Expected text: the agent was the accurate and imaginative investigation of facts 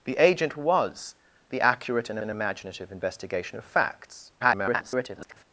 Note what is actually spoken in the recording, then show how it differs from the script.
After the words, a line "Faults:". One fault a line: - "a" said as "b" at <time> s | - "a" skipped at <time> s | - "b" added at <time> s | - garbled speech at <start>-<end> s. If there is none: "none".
the agent was the accurate and and imaginative investigation of facts [garbled]
Faults:
- "and" added at 2.2 s
- garbled speech at 4.4-5.4 s